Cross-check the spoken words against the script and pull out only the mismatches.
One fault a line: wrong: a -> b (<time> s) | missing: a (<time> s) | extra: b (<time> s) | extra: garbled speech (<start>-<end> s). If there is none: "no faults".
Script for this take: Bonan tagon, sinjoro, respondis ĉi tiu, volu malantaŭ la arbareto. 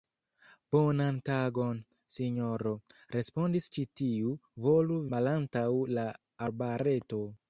no faults